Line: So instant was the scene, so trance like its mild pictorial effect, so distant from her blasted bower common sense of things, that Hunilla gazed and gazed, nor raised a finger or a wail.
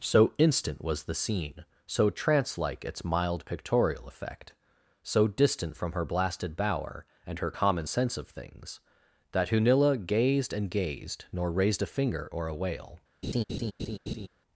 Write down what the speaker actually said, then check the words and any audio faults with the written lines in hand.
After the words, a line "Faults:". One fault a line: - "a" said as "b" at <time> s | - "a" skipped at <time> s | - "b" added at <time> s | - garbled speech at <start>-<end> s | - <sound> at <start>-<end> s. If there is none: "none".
So instant was the scene, so trance like its mild pictorial effect, so distant from her blasted bower and her common sense of things, that Hunilla gazed and gazed, nor raised a finger or a wail.
Faults:
- "and her" added at 7.2 s
- laugh at 13.2-14.3 s